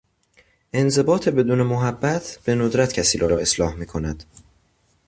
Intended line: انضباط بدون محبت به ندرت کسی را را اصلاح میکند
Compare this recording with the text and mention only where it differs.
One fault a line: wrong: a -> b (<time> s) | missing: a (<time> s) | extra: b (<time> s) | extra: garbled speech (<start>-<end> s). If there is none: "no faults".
no faults